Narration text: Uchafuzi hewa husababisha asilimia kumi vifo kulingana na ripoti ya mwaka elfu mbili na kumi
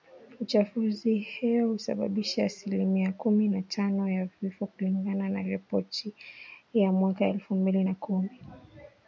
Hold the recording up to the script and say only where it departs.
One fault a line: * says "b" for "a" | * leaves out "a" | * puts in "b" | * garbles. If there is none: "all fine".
* puts in "na tano ya"